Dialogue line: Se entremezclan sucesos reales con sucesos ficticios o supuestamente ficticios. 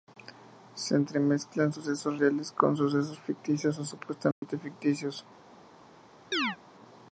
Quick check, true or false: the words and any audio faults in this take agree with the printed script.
false